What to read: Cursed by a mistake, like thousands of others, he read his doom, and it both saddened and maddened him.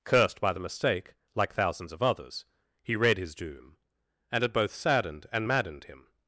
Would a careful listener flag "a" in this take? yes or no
yes